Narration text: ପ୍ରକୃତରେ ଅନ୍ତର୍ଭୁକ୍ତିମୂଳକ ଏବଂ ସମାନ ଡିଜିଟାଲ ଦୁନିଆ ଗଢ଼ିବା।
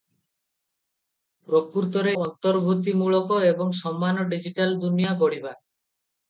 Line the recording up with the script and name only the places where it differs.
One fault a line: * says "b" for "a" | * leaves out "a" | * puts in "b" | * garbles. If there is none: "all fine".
all fine